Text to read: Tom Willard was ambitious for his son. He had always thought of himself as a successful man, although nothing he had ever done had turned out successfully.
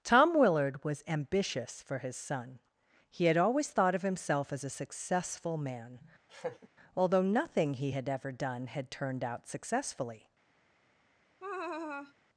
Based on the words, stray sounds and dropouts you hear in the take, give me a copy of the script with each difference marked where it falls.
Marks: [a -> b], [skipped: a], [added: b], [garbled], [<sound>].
Tom Willard was ambitious for his son. He had always thought of himself as a successful man, [laugh] although nothing he had ever done had turned out successfully. [laugh]